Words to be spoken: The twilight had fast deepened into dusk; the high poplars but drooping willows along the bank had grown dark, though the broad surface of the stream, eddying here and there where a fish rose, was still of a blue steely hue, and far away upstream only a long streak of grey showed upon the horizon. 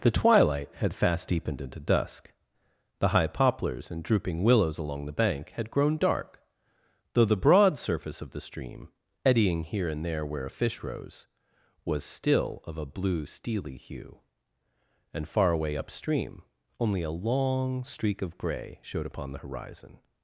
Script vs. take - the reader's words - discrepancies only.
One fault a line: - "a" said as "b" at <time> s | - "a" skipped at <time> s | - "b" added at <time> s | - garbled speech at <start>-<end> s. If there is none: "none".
- "but" said as "and" at 3.9 s